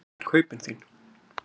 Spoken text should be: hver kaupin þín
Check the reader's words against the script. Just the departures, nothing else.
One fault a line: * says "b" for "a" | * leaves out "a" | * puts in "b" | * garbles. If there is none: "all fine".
all fine